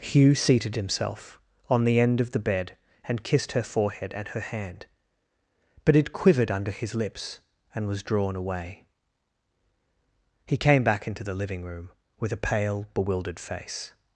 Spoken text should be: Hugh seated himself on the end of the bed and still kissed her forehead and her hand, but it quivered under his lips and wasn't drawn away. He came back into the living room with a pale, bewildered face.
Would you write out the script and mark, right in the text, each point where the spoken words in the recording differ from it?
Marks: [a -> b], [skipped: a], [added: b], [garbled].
Hugh seated himself on the end of the bed and [skipped: still] kissed her forehead and her hand, but it quivered under his lips and [wasn't -> was] drawn away. He came back into the living room with a pale, bewildered face.